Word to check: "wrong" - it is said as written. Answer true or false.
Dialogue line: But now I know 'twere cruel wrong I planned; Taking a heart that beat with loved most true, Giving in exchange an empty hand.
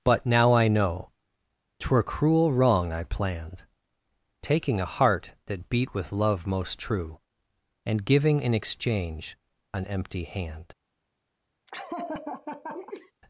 true